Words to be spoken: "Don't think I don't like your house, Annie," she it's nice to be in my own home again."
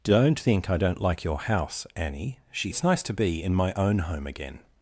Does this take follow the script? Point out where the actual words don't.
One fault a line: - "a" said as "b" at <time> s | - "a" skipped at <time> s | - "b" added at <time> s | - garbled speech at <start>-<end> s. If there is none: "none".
none